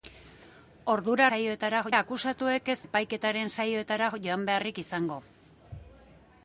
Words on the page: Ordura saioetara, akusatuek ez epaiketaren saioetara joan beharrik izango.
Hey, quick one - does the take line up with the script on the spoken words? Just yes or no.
yes